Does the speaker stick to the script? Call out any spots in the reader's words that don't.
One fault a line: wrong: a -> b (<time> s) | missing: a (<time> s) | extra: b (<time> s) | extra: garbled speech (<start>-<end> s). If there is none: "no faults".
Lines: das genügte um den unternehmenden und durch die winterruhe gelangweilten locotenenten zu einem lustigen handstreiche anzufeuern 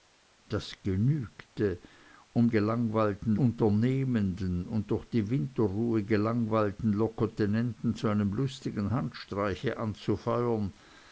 wrong: den -> gelangweilten (2.5 s)